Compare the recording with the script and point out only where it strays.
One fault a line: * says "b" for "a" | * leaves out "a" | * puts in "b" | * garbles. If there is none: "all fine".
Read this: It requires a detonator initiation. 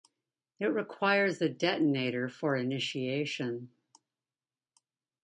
* puts in "for"